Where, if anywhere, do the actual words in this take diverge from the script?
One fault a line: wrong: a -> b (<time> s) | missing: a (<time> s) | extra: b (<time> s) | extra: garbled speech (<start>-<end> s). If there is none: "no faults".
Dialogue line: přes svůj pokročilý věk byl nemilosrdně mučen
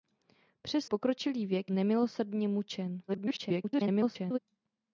missing: svůj (0.8 s)
missing: byl (1.7 s)
extra: garbled speech (3.1-4.4 s)